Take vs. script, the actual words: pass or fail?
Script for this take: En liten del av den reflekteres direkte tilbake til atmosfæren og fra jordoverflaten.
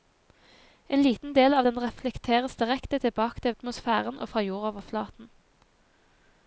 pass